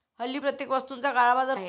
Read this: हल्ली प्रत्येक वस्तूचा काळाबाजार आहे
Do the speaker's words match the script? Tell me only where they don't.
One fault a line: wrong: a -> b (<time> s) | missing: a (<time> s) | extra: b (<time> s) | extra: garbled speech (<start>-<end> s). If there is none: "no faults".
no faults